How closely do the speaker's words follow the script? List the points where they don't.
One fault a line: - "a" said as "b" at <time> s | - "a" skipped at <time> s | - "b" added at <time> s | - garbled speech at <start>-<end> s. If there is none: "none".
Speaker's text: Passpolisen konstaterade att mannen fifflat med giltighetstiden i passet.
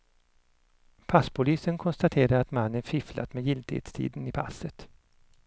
none